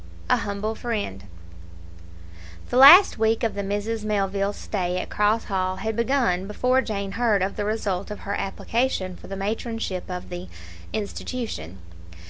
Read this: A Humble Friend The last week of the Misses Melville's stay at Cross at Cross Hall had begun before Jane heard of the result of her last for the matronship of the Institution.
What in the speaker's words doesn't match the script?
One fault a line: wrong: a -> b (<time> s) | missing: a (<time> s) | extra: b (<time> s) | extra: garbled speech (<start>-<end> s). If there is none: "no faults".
missing: at Cross (5.4 s)
wrong: last -> application (8.3 s)